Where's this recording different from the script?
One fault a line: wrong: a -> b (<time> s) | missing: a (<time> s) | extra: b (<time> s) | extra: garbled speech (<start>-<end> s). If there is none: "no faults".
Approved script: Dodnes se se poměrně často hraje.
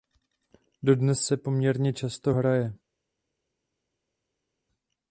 missing: se (1.4 s)